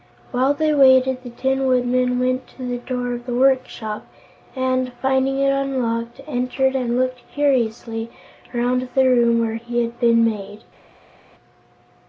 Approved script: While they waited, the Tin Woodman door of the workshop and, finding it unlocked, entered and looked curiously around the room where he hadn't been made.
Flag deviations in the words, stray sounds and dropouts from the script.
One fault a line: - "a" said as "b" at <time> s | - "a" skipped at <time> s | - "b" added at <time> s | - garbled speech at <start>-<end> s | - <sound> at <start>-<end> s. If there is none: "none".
- "went to the" added at 2.2 s
- "hadn't" said as "had" at 9.8 s